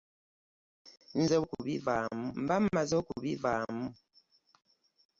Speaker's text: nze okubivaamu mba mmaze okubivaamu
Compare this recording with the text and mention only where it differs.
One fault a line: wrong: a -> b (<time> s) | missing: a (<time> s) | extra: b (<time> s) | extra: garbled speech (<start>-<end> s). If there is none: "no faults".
no faults